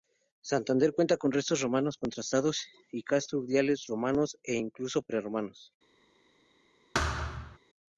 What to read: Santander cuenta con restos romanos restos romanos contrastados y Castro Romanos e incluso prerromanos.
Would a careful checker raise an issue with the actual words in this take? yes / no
yes